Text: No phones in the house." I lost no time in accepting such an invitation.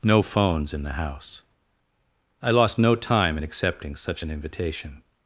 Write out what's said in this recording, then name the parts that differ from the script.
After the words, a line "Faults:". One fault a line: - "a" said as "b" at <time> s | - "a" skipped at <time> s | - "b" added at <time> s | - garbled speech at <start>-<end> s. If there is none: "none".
No phones in the house." I lost no time in accepting such an invitation.
Faults:
none